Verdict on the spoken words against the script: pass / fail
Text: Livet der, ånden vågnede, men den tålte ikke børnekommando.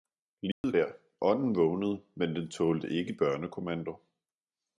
pass